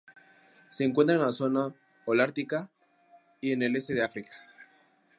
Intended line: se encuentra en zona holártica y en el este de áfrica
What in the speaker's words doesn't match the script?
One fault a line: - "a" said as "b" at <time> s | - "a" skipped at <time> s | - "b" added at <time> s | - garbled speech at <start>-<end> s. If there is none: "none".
- "la" added at 1.2 s